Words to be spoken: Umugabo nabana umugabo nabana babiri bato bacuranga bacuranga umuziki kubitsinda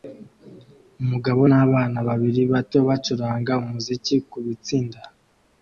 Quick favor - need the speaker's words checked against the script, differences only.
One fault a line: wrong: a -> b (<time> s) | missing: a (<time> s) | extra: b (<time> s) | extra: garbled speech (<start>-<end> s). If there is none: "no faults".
missing: umugabo nabana (2.0 s)
missing: bacuranga (3.5 s)